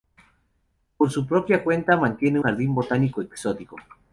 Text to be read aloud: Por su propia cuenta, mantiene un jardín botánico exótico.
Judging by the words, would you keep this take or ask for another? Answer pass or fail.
fail